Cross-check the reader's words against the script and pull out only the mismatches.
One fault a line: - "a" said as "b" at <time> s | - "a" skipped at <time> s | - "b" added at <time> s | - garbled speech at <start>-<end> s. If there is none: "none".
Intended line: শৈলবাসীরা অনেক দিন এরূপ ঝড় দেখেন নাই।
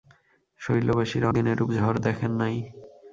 - "অনেক" skipped at 1.3 s